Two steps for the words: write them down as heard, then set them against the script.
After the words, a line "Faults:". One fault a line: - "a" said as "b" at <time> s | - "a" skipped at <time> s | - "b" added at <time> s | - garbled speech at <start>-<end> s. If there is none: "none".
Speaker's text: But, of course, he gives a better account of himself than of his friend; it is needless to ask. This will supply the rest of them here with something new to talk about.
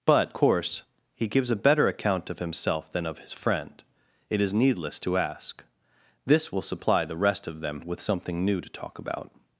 But, course, he gives a better account of himself than of his friend; it is needless to ask. This will supply the rest of them with something new to talk about.
Faults:
- "of" skipped at 0.3 s
- "here" skipped at 7.8 s